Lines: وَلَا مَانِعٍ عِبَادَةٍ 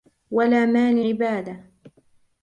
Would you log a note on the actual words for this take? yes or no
no